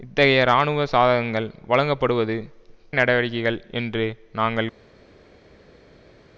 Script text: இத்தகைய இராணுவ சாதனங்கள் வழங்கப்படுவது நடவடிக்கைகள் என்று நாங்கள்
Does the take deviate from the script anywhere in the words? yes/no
no